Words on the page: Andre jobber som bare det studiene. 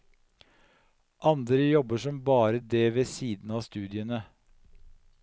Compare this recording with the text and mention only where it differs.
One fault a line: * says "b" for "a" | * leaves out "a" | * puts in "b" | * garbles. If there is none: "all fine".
* puts in "ved siden av"